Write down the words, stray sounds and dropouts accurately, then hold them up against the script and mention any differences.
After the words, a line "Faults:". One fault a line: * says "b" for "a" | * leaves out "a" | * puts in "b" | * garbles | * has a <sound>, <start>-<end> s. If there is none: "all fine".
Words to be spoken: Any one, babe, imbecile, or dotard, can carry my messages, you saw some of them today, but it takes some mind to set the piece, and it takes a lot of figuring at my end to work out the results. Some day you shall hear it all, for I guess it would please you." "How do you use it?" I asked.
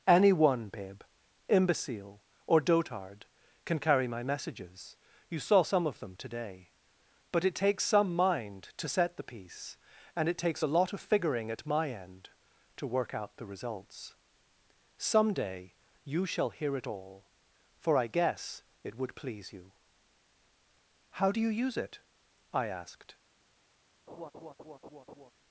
Any one, babe, imbecile, or dotard, can carry my messages, you saw some of them today, but it takes some mind to set the piece, and it takes a lot of figuring at my end to work out the results. Some day you shall hear it all, for I guess it would please you." "How do you use it?" I asked.
Faults:
* has a laugh, 24.1-25.3 s